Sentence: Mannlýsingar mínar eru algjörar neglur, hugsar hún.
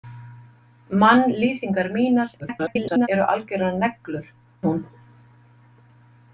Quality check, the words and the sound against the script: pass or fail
fail